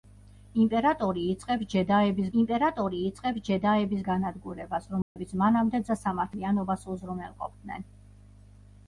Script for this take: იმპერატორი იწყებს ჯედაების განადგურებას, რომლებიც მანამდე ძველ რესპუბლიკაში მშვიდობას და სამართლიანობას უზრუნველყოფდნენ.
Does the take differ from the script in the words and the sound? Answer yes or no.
yes